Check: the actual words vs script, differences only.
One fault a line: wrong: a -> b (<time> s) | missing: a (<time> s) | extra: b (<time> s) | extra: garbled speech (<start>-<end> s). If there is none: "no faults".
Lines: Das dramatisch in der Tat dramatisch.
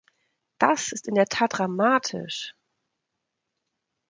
wrong: dramatisch -> ist (0.9 s)